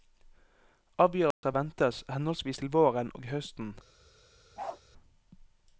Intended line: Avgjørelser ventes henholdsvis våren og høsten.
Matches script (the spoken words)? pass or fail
fail